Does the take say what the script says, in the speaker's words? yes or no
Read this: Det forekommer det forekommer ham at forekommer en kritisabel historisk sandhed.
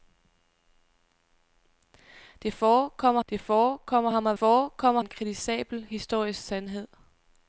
yes